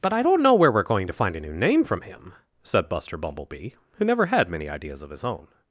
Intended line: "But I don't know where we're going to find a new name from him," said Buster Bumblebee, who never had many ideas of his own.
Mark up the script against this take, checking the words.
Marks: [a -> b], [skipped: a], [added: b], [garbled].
"But I don't know where we're going to find a new name from him," said Buster Bumblebee, who never had many ideas of his own.